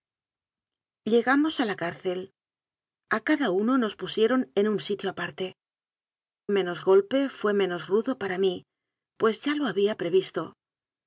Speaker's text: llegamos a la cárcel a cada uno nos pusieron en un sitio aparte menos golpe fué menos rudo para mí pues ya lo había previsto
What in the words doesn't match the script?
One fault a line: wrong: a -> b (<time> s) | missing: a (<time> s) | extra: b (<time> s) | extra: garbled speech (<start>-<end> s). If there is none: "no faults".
no faults